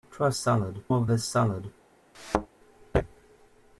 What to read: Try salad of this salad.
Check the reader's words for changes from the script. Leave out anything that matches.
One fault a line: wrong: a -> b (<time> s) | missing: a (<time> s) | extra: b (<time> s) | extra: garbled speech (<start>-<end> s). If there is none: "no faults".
no faults